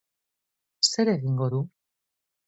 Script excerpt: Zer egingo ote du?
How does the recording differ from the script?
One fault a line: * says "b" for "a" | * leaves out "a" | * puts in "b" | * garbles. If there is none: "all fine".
* leaves out "ote"